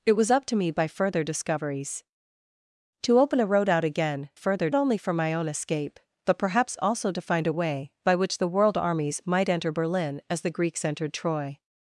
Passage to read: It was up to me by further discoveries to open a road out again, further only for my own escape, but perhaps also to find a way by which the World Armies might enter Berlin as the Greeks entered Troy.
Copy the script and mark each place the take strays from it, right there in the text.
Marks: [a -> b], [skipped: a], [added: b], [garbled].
It was up to me by further discoveries to open a road out again, further only for my own escape, but perhaps also to find a way by which the World Armies might enter Berlin as the Greeks entered Troy.